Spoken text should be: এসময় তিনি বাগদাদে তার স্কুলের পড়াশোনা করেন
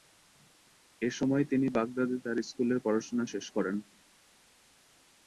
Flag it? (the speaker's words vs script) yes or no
yes